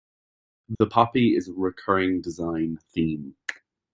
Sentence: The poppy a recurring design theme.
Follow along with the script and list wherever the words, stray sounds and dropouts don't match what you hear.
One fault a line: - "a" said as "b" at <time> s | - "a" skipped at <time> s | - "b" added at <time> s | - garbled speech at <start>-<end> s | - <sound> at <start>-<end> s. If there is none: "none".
- dropout at 0.7-0.8 s
- "is" added at 1.3 s